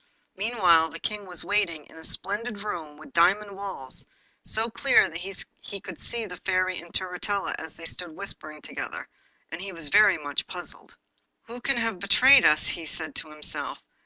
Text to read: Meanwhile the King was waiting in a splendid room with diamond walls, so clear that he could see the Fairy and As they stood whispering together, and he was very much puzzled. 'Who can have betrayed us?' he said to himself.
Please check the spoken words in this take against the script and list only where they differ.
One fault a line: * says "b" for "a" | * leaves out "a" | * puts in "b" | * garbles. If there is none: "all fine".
* puts in "Turritella"